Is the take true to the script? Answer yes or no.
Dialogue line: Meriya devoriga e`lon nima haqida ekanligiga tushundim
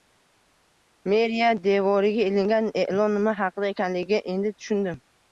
no